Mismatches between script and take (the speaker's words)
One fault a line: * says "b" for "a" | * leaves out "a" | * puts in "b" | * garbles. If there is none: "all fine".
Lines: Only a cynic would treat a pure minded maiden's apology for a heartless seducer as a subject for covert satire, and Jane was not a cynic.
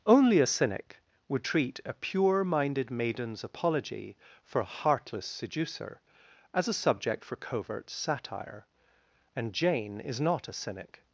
* says "is" for "was"